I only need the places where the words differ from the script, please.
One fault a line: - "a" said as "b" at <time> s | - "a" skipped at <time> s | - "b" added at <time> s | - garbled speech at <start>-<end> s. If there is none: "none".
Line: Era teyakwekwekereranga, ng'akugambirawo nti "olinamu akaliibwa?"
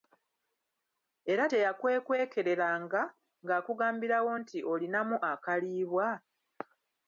none